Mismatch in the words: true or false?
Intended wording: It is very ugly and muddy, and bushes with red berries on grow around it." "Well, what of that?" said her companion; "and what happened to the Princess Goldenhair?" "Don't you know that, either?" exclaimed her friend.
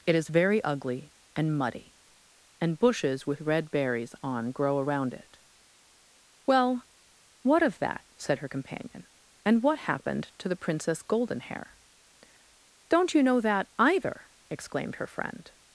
false